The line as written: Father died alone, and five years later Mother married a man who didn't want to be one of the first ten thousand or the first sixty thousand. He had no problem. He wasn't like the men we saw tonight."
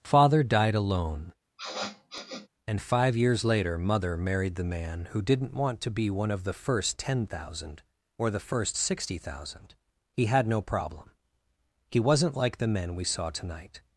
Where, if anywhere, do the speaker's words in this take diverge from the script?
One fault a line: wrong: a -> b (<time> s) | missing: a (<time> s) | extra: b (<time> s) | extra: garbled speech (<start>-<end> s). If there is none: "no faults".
wrong: a -> the (4.5 s)